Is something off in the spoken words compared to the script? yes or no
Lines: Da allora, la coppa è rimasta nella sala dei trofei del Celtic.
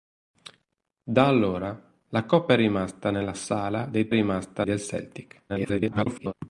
yes